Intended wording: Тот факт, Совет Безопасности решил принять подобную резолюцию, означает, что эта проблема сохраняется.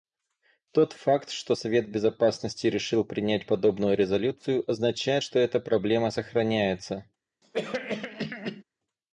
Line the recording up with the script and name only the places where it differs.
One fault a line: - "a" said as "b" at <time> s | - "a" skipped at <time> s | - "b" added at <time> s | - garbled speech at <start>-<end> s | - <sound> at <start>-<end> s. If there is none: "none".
- "что" added at 1.3 s
- cough at 7.4-8.6 s